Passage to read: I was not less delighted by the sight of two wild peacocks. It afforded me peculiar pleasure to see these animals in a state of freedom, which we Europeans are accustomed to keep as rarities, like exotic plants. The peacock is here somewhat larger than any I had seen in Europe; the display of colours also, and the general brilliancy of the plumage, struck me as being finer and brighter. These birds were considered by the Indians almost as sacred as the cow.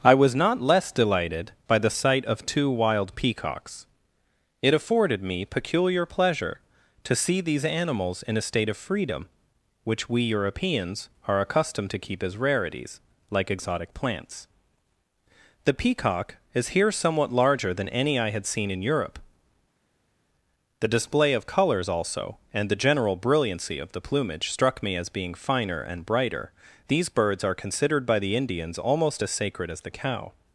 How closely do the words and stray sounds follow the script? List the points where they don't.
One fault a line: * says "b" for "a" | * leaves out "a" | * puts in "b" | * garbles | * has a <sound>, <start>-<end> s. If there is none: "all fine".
* says "are" for "were"